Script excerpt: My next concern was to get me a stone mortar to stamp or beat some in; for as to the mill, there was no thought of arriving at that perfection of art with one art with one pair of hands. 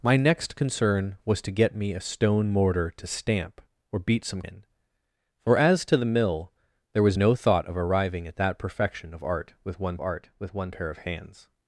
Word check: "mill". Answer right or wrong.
right